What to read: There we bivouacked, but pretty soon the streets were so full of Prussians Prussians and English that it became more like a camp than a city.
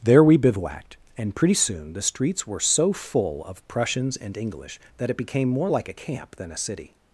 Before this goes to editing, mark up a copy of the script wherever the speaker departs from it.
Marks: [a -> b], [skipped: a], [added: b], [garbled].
There we bivouacked, [but -> and] pretty soon the streets were so full of Prussians [skipped: Prussians] and English that it became more like a camp than a city.